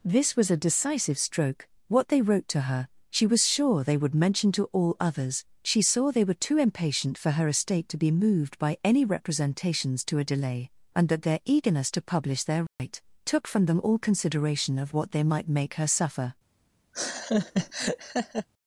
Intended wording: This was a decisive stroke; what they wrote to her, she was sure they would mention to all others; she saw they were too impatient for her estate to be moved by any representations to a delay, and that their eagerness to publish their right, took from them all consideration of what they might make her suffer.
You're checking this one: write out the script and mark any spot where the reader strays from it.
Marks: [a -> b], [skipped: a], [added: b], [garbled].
This was a decisive stroke; what they wrote to her, she was sure they would mention to all others; she saw they were too impatient for her estate to be moved by any representations to a delay, and that their eagerness to publish their right, took from them all consideration of what they might make her suffer.